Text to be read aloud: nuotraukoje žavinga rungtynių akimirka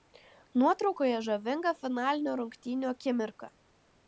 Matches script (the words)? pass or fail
fail